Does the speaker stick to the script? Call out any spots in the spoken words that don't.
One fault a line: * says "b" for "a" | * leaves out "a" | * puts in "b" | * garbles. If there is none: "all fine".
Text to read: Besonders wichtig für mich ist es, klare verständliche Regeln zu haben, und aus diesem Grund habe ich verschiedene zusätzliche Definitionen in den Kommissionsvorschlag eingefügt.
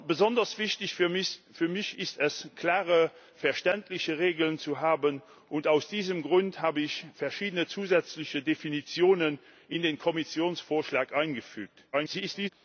* garbles